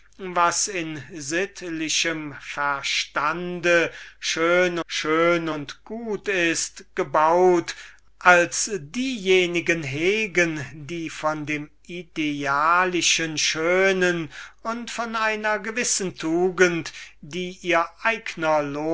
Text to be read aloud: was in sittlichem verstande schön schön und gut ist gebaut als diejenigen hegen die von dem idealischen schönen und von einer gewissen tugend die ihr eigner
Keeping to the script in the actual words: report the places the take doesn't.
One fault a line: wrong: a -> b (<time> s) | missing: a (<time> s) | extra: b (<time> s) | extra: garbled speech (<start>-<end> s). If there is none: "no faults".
no faults